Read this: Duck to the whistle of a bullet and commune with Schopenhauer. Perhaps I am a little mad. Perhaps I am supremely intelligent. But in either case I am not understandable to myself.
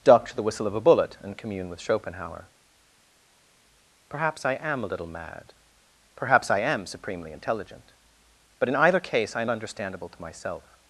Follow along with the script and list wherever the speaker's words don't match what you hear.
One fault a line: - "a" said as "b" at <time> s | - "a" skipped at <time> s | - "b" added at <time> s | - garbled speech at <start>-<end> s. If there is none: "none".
- "not" skipped at 9.5 s